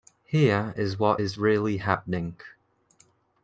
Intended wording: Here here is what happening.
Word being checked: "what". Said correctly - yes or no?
no